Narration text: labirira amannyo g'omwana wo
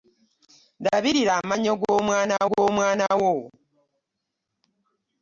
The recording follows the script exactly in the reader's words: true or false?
false